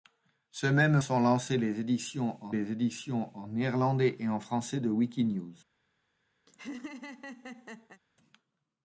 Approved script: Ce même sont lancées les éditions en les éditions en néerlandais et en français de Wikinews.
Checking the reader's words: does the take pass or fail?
pass